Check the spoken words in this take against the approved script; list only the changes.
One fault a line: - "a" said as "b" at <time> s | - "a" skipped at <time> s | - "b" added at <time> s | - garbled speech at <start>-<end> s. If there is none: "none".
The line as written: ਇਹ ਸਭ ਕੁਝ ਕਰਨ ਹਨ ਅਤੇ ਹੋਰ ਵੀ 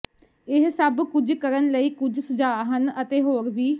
- "ਲਈ ਕੁਝ ਸੁਝਾਅ" added at 1.7 s